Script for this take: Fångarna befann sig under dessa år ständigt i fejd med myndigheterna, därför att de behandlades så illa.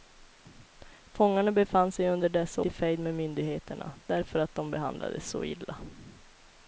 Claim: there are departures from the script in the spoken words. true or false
true